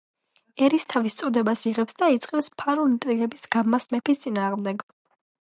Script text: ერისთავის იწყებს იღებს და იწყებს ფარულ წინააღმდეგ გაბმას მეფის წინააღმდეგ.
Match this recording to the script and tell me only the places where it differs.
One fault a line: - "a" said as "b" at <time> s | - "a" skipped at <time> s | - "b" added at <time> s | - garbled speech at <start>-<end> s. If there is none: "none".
- "იწყებს" said as "წოდებას" at 1.2 s
- "წინააღმდეგ" said as "ინტრიგების" at 2.9 s